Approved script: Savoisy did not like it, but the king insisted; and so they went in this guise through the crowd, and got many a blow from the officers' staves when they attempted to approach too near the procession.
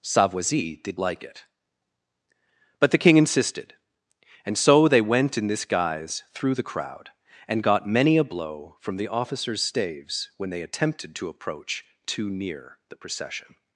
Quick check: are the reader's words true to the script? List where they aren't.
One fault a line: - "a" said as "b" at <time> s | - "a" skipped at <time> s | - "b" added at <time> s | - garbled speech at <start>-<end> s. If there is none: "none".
- "not" skipped at 1.0 s